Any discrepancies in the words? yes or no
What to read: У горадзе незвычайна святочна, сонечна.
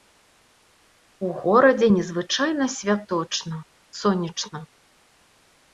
no